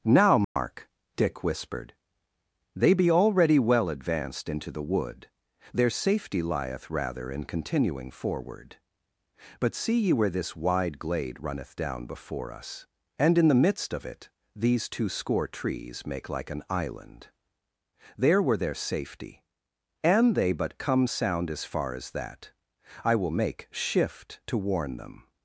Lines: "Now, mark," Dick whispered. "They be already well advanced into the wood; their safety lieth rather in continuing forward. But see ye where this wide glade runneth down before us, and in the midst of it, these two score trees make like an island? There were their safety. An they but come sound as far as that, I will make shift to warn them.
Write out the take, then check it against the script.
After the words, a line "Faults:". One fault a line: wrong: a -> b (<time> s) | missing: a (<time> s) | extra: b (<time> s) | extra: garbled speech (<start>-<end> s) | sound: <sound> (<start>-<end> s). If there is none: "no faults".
"Now, mark," Dick whispered. "They be already well advanced into the wood; their safety lieth rather in continuing forward. But see ye where this wide glade runneth down before us, and in the midst of it, these two score trees make like an island? There were their safety. An they but come sound as far as that, I will make shift to warn them.
Faults:
sound: dropout (0.4-0.6 s)